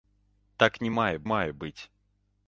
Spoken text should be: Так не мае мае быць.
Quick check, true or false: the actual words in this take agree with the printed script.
true